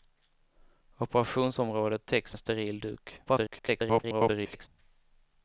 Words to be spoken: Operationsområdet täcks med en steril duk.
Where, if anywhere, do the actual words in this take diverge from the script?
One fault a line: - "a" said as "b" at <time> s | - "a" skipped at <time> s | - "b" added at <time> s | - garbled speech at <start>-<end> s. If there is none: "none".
- "med" skipped at 2.4 s
- garbled speech at 3.2-4.7 s